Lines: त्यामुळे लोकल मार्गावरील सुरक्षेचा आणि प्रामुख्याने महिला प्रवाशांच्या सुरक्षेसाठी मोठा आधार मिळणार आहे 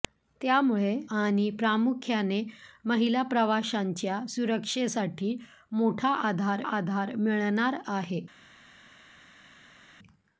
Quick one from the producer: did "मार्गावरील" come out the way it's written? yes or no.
no